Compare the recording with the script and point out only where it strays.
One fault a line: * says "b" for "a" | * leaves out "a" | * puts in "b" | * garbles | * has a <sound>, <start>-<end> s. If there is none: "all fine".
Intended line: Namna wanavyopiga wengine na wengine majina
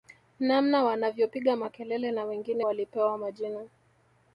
* says "makelele" for "wengine"
* puts in "walipewa"